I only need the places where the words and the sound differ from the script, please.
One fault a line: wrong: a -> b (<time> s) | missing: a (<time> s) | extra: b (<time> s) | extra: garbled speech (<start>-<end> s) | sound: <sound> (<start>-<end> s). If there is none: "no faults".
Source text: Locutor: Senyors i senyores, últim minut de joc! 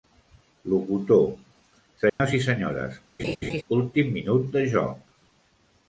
sound: dropout (2.1-2.2 s)
sound: laugh (3.2-3.6 s)